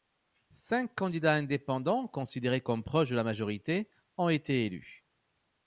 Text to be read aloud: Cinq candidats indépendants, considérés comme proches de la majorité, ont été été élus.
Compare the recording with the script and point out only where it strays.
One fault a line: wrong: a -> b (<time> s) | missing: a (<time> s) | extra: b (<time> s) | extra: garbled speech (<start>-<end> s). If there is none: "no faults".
missing: été (4.7 s)